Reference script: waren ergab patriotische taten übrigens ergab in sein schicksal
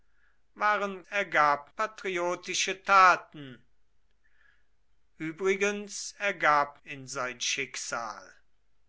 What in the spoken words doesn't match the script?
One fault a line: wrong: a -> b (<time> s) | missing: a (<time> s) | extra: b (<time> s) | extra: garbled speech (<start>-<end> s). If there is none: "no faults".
no faults